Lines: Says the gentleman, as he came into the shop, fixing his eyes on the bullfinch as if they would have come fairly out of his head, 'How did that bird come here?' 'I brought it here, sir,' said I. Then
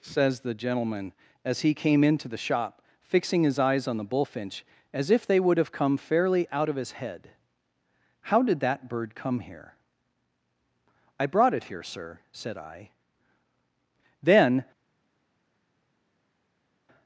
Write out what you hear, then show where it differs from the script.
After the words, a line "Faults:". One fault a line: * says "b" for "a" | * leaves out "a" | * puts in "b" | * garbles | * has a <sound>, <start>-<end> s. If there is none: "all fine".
Says the gentleman, as he came into the shop, fixing his eyes on the bullfinch as if they would have come fairly out of his head, 'How did that bird come here?' 'I brought it here, sir,' said I. Then
Faults:
all fine